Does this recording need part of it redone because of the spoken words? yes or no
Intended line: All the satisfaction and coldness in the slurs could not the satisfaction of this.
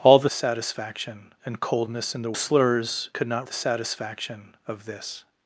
no